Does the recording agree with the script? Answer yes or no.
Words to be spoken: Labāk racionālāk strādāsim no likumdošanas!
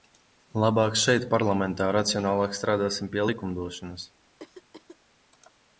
no